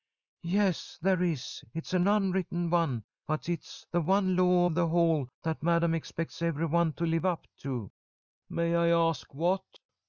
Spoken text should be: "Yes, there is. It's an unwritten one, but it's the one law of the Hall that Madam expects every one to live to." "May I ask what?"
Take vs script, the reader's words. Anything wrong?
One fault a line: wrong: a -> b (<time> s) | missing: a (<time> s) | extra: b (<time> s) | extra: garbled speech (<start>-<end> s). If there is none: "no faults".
extra: up (7.2 s)